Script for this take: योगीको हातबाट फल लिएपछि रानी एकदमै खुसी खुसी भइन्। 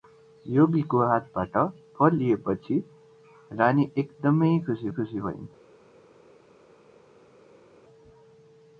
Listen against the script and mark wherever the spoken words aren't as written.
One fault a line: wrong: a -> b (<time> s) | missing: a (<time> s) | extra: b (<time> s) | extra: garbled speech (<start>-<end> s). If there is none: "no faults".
no faults